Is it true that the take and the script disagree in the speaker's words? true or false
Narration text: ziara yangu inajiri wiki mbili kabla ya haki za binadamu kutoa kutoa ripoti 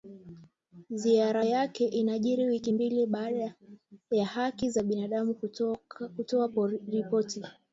true